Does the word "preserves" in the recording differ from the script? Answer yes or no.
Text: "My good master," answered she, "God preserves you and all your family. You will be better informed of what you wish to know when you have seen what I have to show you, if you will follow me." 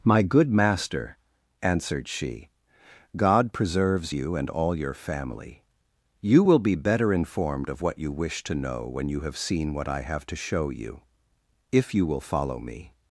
no